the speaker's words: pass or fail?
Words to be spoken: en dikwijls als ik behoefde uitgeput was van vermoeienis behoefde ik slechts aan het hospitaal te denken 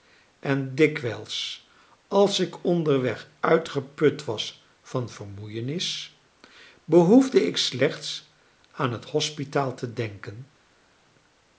fail